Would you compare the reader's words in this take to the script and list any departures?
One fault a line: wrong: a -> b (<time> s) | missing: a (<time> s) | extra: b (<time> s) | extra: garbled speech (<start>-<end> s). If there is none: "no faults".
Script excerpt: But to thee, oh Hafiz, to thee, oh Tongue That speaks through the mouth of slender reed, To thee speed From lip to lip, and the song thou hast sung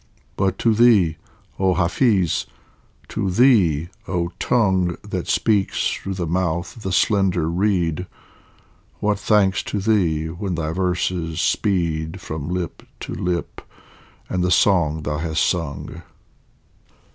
extra: the (6.8 s)
extra: What thanks (9.0 s)
extra: when thy verses (10.3 s)